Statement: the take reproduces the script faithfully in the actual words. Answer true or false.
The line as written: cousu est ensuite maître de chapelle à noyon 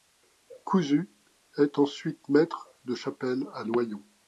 true